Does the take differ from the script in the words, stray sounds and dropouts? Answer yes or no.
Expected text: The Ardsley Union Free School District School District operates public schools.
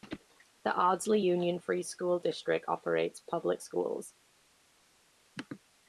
yes